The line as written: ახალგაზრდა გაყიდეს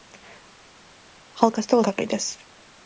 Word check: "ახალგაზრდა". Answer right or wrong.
right